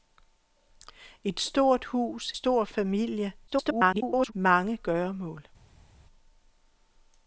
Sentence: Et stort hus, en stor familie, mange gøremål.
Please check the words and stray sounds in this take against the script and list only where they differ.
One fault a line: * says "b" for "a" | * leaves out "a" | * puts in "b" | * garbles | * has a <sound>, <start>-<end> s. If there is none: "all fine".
* leaves out "en"
* garbles